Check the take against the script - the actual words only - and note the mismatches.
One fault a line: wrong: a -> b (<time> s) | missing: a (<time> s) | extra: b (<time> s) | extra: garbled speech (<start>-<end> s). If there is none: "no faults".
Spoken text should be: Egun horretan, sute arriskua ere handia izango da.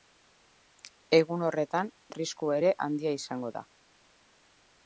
missing: sute (1.9 s)